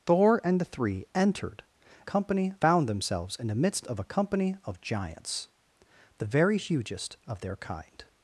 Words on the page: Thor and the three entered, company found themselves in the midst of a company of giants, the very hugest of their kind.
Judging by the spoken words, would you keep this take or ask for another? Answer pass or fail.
pass